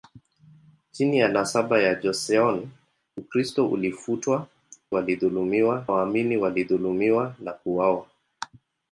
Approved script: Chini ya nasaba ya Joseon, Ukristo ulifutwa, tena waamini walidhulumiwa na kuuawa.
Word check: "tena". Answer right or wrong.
wrong